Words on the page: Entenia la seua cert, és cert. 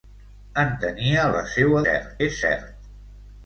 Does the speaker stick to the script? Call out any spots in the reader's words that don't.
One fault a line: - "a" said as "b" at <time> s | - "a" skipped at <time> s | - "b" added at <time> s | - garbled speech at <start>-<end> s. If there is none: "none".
none